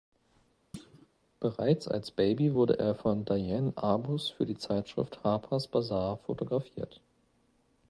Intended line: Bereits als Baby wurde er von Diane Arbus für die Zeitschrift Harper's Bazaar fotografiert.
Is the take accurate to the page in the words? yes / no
yes